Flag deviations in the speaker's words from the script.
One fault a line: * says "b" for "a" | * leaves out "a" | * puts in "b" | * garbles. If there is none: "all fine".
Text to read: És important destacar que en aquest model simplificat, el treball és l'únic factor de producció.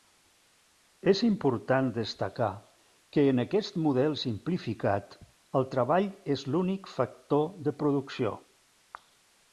all fine